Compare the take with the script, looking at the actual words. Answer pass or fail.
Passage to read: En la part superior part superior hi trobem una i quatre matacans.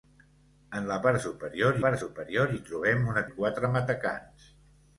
pass